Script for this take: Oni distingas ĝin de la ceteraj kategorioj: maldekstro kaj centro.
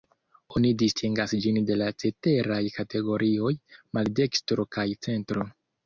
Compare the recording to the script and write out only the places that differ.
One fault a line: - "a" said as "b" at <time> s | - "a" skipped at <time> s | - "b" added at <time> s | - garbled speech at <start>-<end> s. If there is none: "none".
none